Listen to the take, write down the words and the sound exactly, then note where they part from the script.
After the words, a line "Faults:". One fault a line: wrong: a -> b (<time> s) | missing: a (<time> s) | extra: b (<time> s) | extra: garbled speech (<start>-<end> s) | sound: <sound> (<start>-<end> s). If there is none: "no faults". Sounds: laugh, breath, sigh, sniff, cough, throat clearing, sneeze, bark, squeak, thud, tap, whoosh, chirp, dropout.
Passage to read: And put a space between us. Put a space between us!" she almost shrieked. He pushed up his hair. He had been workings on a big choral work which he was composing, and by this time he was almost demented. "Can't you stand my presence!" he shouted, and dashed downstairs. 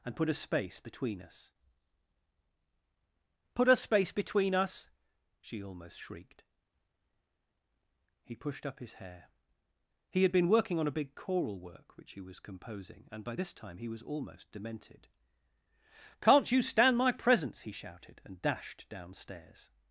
And put a space between us. Put a space between us!" she almost shrieked. He pushed up his hair. He had been working on a big choral work which he was composing, and by this time he was almost demented. "Can't you stand my presence!" he shouted, and dashed downstairs.
Faults:
wrong: workings -> working (10.5 s)